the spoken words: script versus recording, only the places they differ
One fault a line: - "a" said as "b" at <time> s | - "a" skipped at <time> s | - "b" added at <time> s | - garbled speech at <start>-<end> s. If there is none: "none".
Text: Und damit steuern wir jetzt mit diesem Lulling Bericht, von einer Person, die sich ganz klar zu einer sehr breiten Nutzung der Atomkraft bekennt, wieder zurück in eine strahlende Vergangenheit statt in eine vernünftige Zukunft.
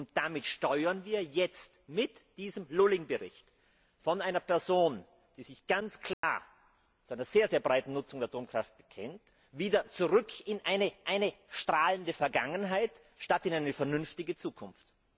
- "eine" added at 11.1 s